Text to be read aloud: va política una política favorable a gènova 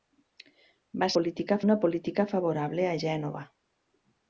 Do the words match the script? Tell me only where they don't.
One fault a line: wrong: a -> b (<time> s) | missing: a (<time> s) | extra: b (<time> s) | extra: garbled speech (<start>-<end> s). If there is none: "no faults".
no faults